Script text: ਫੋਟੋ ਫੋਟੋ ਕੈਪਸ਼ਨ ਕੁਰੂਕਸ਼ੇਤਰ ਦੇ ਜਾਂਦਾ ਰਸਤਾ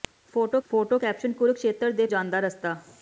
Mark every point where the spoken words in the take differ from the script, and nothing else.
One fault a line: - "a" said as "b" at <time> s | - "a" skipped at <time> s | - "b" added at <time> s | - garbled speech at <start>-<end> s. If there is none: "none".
none